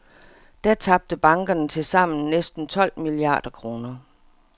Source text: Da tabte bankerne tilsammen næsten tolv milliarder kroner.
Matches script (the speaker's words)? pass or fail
pass